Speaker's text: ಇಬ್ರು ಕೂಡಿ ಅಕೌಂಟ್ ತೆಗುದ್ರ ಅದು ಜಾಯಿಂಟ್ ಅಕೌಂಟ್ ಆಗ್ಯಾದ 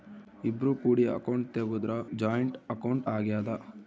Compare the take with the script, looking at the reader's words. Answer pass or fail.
fail